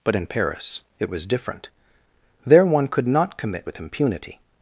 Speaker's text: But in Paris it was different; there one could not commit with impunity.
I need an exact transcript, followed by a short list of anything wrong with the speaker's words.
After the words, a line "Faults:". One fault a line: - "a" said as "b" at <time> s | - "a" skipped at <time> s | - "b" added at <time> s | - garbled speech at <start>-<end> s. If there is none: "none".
But in Paris it was different; there one could not commit with impunity.
Faults:
none